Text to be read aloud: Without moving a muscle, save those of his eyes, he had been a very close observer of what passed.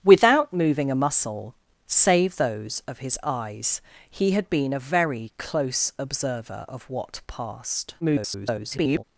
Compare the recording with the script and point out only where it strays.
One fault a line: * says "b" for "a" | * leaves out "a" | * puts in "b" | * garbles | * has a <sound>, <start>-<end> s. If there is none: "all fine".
* garbles